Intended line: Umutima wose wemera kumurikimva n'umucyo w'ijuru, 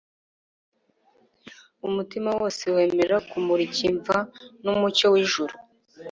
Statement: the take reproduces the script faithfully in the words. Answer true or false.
true